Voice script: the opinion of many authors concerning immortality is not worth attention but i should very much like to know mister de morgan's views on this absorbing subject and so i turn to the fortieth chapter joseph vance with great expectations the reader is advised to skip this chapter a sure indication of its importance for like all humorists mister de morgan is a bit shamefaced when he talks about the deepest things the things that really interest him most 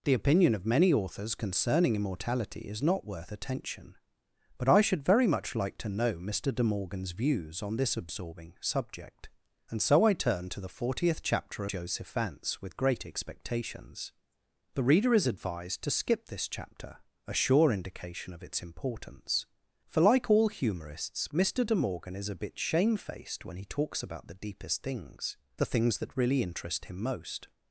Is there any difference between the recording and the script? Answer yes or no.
no